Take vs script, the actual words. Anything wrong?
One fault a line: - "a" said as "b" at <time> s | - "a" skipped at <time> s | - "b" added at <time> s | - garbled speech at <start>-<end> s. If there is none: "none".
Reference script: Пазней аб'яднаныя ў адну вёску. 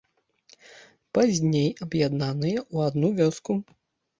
none